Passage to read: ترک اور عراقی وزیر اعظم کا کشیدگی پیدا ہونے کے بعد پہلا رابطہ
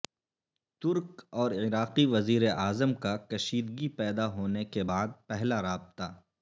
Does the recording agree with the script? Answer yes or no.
yes